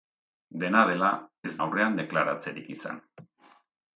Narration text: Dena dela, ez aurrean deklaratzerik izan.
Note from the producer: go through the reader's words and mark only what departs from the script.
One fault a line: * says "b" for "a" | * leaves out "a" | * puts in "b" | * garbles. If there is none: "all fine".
all fine